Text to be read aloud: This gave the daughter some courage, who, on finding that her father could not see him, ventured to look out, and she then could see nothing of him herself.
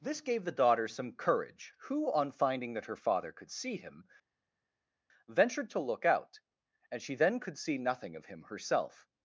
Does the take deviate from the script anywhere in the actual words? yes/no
yes